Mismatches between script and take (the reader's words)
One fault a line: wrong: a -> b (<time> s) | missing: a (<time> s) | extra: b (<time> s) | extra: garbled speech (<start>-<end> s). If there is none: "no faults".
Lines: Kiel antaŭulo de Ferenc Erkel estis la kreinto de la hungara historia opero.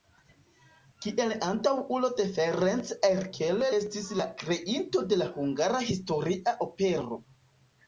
no faults